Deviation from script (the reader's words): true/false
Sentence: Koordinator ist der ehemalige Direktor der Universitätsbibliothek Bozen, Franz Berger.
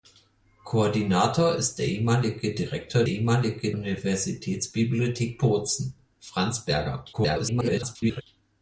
true